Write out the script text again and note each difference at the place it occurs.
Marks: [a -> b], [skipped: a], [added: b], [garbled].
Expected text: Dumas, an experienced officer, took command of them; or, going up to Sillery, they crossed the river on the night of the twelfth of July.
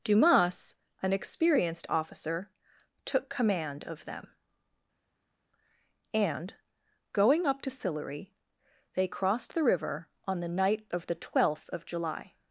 Dumas, an experienced officer, took command of them; [or, -> and] going up to Sillery, they crossed the river on the night of the twelfth of July.